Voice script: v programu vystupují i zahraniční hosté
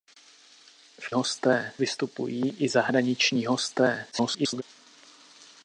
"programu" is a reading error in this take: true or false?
true